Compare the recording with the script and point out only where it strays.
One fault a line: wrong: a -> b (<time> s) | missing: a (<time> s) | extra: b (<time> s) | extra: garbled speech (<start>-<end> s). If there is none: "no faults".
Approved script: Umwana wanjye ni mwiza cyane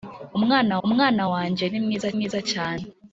extra: umwana (0.9 s)
extra: mwiza (2.1 s)